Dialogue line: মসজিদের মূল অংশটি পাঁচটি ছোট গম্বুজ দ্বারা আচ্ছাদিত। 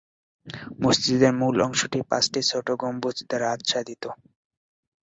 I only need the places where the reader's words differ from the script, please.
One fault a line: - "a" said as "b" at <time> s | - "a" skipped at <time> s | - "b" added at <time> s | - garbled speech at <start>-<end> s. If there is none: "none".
none